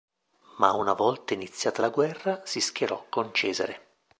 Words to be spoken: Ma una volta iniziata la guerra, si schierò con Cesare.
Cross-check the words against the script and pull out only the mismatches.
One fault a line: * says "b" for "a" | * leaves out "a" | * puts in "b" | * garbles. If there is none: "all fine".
all fine